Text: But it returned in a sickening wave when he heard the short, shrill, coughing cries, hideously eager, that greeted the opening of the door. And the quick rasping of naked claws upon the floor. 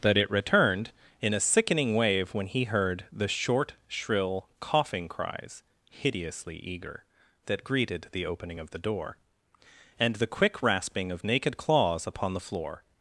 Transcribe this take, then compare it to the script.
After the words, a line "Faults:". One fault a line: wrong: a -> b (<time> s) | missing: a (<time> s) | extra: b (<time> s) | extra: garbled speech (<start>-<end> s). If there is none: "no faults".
That it returned in a sickening wave when he heard the short, shrill, coughing cries, hideously eager, that greeted the opening of the door. And the quick rasping of naked claws upon the floor.
Faults:
wrong: But -> That (0.0 s)